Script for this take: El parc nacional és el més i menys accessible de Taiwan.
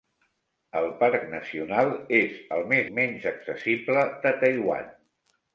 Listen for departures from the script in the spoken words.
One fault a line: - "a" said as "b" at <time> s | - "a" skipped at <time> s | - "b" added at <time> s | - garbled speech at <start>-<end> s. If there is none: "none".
none